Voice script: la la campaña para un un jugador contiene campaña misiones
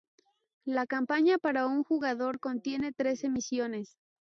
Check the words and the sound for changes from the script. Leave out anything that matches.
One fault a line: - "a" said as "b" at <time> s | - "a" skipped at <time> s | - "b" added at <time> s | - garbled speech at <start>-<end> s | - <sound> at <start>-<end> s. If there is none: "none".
- "la" skipped at 0.9 s
- "un" skipped at 1.8 s
- "campaña" said as "trece" at 2.9 s